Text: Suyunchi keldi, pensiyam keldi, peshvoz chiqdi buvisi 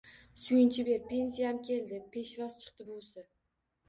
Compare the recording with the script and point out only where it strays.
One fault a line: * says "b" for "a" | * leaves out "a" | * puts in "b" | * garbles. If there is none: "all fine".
* says "ber" for "keldi"